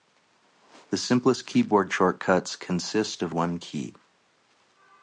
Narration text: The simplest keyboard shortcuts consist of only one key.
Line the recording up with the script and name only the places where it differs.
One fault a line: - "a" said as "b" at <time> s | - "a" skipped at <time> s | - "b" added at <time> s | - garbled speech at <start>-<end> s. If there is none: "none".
- "only" skipped at 3.4 s